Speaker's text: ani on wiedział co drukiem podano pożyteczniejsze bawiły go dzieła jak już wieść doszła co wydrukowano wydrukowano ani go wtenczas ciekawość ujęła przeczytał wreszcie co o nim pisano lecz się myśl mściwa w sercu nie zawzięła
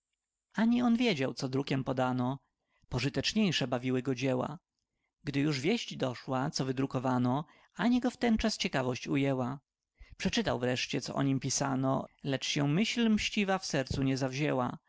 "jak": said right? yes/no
no